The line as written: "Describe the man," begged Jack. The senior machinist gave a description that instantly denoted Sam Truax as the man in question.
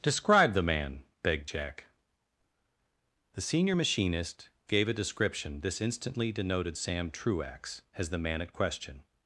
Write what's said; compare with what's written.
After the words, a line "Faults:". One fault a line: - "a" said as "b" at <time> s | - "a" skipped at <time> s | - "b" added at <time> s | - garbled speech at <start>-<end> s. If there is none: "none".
"Describe the man," begged Jack. The senior machinist gave a description this instantly denoted Sam Truax as the man at question.
Faults:
- "that" said as "this" at 5.6 s
- "in" said as "at" at 8.4 s